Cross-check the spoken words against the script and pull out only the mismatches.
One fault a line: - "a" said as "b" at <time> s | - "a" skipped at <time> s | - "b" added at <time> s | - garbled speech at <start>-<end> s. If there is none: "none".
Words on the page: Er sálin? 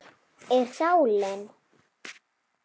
none